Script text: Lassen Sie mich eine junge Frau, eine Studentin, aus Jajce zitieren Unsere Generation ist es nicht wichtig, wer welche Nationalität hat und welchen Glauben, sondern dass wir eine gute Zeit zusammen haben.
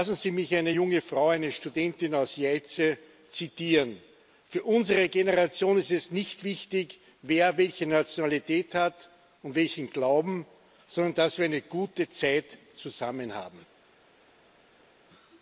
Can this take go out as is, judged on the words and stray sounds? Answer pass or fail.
fail